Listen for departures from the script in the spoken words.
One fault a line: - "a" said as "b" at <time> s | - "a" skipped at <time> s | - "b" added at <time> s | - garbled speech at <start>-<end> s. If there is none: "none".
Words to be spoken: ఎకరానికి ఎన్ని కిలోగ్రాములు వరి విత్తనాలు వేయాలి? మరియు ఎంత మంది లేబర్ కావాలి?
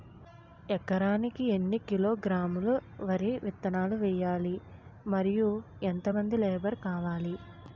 none